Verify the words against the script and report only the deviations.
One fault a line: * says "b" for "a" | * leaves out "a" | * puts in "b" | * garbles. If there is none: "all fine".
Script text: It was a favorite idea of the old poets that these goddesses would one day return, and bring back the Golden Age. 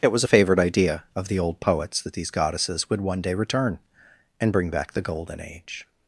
all fine